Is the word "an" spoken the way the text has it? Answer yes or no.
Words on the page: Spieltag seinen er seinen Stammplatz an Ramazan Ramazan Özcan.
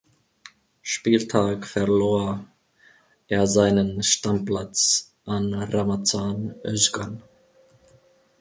yes